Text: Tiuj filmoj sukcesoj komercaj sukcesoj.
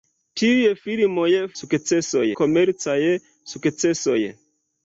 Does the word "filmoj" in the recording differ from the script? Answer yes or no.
no